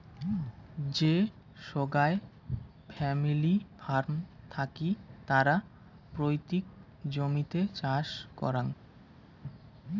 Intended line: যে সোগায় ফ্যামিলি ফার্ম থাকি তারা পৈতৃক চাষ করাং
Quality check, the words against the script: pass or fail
fail